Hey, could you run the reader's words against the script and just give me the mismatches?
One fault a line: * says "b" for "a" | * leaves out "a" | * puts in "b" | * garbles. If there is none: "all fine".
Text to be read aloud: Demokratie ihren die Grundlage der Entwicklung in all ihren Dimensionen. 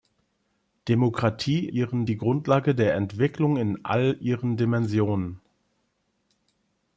all fine